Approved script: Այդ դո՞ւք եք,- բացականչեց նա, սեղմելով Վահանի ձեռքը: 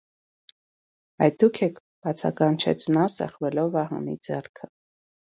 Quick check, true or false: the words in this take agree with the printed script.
true